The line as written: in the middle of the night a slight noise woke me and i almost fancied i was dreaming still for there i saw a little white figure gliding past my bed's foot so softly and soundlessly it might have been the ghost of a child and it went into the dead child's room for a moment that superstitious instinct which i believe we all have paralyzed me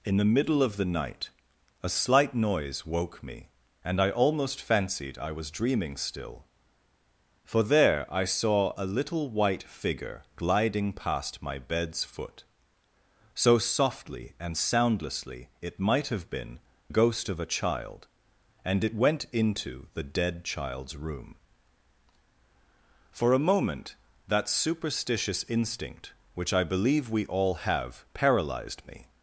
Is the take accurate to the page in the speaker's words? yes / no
no